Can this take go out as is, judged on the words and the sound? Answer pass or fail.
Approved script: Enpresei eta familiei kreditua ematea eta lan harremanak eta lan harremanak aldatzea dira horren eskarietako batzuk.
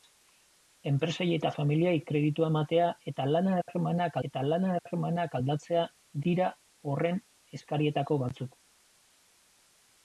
pass